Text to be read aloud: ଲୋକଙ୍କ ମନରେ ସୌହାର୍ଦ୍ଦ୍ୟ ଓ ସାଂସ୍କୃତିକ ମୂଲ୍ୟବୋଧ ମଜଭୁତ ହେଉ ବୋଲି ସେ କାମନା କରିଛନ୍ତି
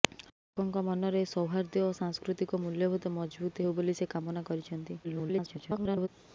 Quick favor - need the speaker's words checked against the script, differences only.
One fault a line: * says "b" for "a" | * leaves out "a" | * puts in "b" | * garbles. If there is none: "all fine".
* garbles